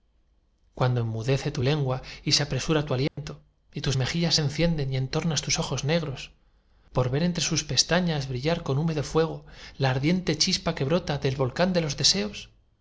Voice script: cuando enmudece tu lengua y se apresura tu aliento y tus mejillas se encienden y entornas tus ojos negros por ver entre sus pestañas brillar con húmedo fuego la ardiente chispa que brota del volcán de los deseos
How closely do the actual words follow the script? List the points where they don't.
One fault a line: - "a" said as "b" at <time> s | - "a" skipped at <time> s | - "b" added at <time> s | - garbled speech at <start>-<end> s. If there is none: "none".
none